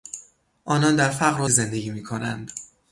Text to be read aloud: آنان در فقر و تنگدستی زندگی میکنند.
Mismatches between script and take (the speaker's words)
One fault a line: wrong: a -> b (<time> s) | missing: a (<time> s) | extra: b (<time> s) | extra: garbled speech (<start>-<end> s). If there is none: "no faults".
missing: تنگدستی (1.5 s)